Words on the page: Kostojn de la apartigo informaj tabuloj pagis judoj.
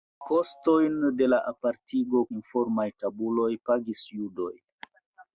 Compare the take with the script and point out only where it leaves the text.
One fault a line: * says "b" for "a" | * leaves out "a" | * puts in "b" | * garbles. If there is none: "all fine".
all fine